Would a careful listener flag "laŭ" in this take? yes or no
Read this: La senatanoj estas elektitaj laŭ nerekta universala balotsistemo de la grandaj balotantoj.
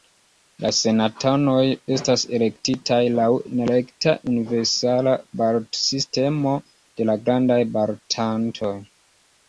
no